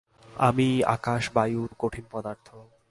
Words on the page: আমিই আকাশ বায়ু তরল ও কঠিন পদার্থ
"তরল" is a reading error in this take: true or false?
true